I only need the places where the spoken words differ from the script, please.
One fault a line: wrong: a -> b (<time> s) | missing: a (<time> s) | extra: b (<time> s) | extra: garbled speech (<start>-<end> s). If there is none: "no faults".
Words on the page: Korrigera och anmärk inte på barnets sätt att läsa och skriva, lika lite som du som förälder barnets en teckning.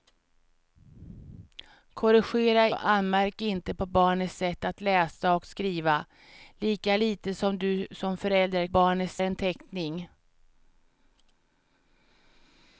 no faults